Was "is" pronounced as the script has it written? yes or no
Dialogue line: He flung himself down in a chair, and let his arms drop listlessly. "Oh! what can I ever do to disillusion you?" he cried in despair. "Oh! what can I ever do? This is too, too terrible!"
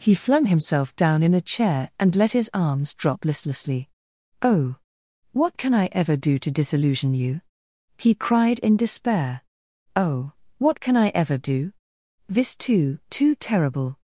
no